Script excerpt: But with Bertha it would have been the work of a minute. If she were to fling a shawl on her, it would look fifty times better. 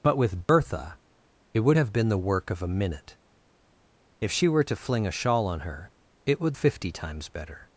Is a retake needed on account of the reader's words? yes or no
yes